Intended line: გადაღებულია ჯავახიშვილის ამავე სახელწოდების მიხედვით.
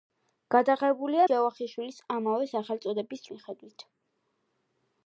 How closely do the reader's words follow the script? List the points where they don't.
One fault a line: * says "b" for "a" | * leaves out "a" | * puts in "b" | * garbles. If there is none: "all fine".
all fine